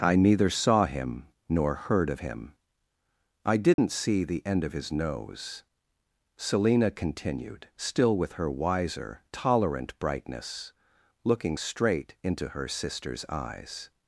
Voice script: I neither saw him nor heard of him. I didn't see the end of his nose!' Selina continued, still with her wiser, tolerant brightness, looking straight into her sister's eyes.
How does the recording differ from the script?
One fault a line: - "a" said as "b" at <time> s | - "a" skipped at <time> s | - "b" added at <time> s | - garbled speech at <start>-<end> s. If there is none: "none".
none